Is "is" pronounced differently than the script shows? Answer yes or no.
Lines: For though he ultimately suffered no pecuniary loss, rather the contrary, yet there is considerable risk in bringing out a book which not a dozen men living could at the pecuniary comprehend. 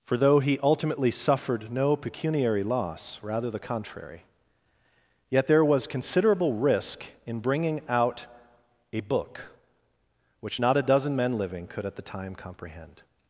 yes